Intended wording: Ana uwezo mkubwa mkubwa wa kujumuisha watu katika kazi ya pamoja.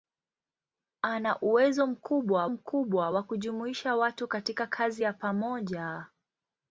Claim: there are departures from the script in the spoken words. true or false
false